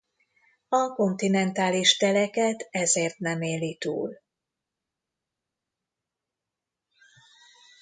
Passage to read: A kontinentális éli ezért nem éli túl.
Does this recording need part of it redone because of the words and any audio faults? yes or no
yes